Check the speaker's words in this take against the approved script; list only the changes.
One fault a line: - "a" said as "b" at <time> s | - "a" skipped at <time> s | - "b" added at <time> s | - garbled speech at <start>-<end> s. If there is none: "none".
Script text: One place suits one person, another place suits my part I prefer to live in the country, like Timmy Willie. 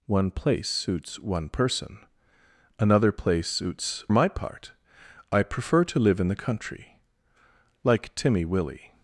none